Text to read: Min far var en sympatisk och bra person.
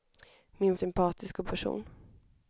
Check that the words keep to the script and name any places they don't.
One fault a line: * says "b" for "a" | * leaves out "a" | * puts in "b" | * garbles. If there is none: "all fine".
* leaves out "far var en"
* leaves out "bra"